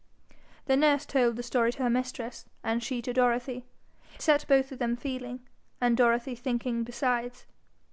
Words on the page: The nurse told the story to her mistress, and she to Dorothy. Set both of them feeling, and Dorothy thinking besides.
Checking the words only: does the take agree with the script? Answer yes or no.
yes